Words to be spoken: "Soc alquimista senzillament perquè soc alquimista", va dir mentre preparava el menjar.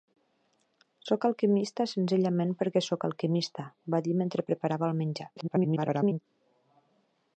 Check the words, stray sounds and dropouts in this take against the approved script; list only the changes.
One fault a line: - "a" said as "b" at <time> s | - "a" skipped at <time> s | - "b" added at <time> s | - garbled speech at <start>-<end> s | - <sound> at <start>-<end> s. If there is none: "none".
- garbled speech at 5.4-6.2 s